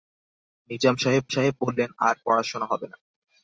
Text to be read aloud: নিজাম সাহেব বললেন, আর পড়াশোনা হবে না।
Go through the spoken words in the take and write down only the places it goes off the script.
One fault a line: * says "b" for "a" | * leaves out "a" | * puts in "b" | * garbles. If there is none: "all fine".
* puts in "সাহেব"